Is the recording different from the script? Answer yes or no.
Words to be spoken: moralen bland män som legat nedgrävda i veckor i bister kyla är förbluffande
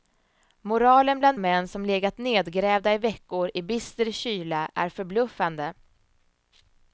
no